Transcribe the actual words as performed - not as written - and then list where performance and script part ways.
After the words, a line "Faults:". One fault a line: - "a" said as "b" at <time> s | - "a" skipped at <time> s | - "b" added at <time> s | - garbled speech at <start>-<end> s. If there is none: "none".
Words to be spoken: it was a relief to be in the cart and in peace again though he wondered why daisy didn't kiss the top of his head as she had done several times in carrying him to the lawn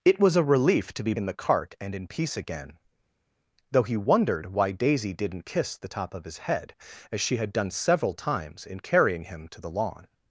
it was a relief to be in the cart and in peace again though he wondered why daisy didn't kiss the top of his head as she had done several times in carrying him to the lawn
Faults:
none